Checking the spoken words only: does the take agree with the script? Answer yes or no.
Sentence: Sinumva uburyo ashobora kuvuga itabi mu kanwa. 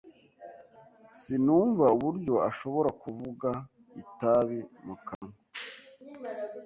yes